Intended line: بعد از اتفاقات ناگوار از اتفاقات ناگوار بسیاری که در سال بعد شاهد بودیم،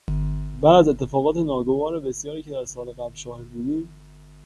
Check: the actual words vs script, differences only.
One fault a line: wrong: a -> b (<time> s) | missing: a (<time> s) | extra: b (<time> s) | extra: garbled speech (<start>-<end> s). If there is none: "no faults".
missing: از اتفاقات ناگوار (2.0 s)
wrong: بعد -> قبل (2.9 s)